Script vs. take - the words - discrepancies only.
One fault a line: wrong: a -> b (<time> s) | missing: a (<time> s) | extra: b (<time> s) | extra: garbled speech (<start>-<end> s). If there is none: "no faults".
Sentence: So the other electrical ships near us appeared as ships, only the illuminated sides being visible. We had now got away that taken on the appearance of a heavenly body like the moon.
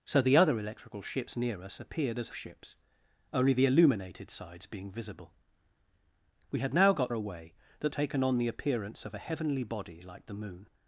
no faults